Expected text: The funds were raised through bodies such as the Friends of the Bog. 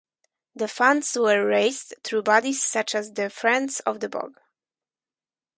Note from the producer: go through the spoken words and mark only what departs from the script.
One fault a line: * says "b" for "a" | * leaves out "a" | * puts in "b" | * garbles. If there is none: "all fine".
all fine